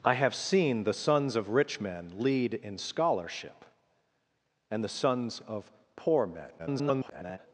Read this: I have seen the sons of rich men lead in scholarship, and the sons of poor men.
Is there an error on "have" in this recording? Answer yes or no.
no